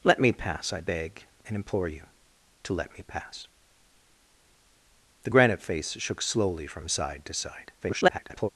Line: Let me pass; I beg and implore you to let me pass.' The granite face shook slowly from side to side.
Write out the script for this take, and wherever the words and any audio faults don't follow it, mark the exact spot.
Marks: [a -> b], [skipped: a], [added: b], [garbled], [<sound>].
Let me pass; I beg and implore you to let me pass.' The granite face shook slowly from side to side. [garbled]